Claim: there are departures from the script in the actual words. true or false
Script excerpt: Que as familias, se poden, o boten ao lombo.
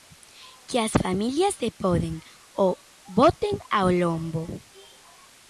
false